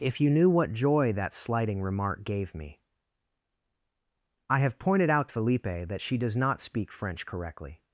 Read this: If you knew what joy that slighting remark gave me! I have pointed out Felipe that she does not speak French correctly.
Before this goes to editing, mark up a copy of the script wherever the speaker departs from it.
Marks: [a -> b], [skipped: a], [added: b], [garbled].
If you knew what joy that slighting remark gave me! I have pointed out Felipe that she does not speak French correctly.